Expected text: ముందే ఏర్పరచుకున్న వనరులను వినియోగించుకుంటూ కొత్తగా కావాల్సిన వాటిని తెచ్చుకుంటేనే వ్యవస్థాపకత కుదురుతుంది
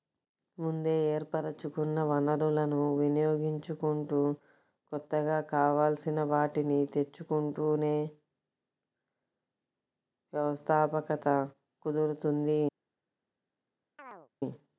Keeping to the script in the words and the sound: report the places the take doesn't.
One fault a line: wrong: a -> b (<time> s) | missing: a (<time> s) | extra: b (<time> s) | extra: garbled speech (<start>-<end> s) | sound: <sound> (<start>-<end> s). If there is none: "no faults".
sound: chirp (14.0-14.3 s)